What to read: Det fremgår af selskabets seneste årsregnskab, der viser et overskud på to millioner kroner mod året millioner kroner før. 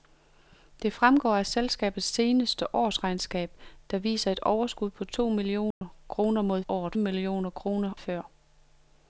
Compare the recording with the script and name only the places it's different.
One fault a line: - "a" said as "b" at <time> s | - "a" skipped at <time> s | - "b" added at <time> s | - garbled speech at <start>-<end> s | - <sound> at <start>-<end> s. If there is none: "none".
- dropout at 5.7-5.8 s